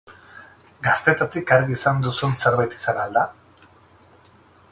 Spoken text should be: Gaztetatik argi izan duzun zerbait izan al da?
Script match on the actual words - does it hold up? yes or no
yes